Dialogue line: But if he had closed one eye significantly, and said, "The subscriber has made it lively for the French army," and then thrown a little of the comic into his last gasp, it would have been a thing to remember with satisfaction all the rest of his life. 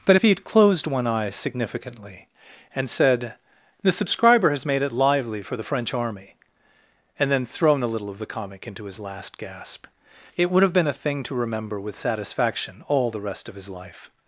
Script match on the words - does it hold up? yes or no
yes